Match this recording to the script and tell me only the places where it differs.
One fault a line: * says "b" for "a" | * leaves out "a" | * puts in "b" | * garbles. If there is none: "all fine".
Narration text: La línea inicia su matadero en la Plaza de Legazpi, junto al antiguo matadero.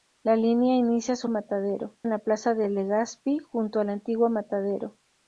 all fine